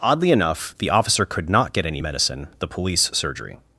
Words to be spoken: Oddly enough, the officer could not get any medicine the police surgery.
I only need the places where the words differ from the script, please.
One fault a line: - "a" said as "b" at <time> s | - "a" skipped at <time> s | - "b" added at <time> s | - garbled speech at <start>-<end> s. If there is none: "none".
none